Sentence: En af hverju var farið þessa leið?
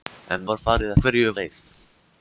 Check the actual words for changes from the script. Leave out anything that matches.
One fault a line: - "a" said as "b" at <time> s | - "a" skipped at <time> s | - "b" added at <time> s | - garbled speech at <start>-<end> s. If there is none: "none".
- "af hverju" skipped at 0.5 s
- "þessa" said as "hverju" at 1.0 s